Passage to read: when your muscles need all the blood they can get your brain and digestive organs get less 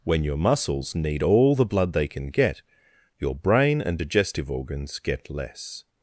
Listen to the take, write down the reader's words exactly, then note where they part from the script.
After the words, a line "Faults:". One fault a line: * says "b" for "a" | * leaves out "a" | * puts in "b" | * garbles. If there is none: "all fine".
when your muscles need all the blood they can get your brain and digestive organs get less
Faults:
all fine